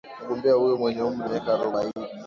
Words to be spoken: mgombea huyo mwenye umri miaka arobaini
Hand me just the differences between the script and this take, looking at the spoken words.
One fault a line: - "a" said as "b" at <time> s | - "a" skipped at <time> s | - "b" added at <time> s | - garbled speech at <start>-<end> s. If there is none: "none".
none